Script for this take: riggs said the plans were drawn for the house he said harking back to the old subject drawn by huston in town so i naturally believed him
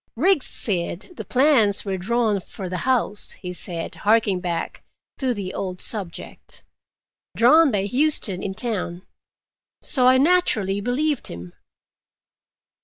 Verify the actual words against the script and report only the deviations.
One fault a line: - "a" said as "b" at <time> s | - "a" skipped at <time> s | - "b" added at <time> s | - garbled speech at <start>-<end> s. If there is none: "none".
none